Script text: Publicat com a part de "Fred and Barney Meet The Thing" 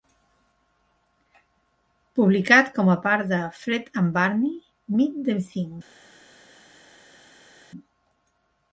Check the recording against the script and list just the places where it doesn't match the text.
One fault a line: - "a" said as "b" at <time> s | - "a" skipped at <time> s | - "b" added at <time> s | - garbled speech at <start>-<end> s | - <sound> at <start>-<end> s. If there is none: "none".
none